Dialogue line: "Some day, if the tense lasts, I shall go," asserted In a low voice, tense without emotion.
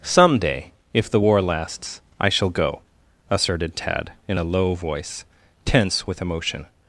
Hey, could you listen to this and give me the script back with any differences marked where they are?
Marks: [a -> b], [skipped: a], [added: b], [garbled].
"Some day, if the [tense -> war] lasts, I shall go," asserted [added: Tad] In a low voice, tense [without -> with] emotion.